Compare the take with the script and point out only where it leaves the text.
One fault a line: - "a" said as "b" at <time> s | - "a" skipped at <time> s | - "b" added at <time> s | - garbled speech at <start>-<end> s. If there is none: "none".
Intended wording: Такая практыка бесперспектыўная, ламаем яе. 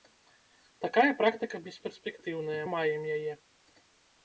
none